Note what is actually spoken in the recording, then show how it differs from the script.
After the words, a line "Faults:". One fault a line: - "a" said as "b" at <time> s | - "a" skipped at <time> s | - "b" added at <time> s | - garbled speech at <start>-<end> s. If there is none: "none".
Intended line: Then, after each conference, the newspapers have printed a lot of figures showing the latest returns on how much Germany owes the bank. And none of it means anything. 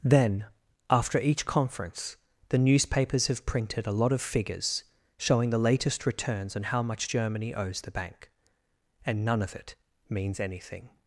Then, after each conference, the newspapers have printed a lot of figures showing the latest returns on how much Germany owes the bank. And none of it means anything.
Faults:
none